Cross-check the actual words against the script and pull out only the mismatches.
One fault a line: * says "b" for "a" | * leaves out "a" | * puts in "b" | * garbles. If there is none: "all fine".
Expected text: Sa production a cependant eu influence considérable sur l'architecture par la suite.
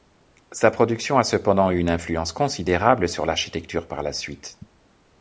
* puts in "une"